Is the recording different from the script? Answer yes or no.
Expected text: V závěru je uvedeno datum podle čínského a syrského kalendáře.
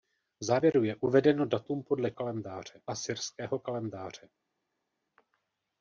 yes